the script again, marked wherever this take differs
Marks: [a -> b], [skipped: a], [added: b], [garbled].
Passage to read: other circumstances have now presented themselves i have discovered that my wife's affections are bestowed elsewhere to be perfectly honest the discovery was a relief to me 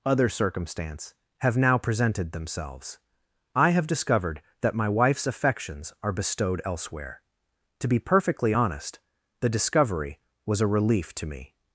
other [circumstances -> circumstance] have now presented themselves i have discovered that my wife's affections are bestowed elsewhere to be perfectly honest the discovery was a relief to me